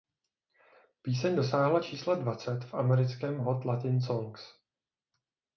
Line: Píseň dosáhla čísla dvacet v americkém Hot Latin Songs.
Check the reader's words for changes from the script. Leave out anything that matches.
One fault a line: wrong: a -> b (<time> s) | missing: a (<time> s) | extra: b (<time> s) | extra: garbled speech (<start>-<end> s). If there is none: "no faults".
no faults